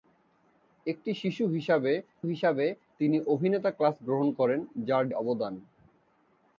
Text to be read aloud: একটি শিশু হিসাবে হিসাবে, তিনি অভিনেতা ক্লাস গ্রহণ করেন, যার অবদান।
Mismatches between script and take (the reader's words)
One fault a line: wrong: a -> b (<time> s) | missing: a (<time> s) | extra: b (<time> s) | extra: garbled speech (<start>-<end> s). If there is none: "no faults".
no faults